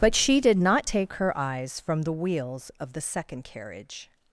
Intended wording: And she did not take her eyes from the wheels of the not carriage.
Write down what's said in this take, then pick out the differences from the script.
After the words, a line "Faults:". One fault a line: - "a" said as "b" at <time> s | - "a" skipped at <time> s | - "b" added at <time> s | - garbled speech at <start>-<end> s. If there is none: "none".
But she did not take her eyes from the wheels of the second carriage.
Faults:
- "And" said as "But" at 0.0 s
- "not" said as "second" at 3.0 s